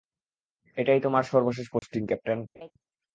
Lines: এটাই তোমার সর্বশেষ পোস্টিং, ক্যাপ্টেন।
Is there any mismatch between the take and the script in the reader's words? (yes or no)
no